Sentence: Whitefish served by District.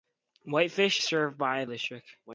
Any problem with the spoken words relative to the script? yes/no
no